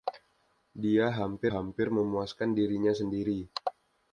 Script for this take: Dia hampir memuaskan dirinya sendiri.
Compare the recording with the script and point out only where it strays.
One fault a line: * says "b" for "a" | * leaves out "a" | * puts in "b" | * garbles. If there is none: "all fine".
* puts in "hampir"